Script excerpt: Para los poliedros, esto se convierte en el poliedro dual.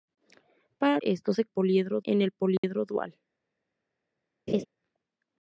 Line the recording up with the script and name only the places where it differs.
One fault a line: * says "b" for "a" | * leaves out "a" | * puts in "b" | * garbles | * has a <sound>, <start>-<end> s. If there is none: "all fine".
* leaves out "los poliedros"
* says "poliedro" for "convierte"
* has a dropout, 2.6-2.6 s
* has a laugh, 4.5-4.7 s